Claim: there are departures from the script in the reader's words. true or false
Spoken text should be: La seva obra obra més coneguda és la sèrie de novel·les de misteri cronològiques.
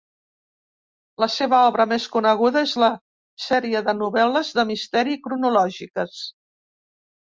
true